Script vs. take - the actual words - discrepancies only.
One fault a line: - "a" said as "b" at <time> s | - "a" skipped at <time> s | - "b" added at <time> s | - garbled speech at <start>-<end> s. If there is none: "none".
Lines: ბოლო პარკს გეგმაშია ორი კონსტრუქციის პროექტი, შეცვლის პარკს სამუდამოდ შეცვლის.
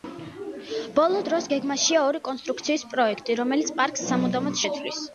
- "პარკს" said as "დროს" at 1.3 s
- "შეცვლის" said as "რომელიც" at 3.4 s